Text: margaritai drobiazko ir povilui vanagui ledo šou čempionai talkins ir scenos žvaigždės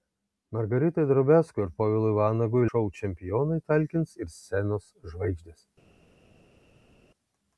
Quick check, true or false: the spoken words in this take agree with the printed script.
false